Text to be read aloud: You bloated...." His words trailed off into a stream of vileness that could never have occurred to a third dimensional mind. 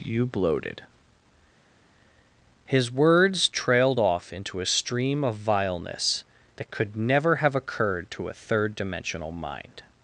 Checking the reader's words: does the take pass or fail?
pass